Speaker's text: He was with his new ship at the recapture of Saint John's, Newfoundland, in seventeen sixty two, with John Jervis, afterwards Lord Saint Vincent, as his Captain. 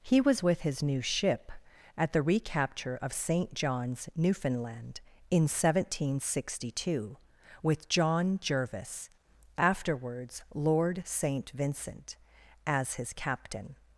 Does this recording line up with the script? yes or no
yes